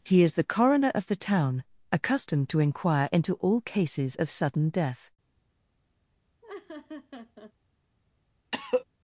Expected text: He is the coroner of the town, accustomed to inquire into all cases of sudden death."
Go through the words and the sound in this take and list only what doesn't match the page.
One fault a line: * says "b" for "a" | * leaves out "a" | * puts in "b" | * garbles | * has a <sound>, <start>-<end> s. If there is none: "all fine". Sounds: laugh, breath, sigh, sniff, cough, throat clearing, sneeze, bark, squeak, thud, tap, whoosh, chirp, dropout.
* has a laugh, 6.4-7.5 s
* has a cough, 8.5-8.8 s